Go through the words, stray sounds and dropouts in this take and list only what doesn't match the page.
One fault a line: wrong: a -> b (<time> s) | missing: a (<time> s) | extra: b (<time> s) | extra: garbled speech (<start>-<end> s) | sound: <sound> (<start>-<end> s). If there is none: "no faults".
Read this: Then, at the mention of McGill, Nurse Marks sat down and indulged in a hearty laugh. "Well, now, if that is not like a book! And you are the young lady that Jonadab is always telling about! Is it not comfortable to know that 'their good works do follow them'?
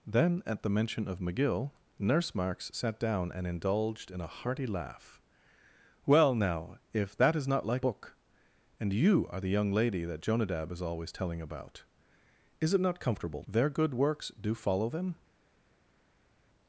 missing: a (7.9 s)
missing: to know that (13.4 s)